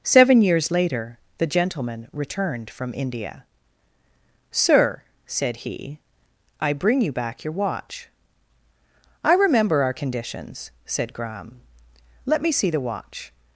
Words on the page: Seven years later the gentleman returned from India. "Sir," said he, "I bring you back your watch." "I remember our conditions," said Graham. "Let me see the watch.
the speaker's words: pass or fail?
pass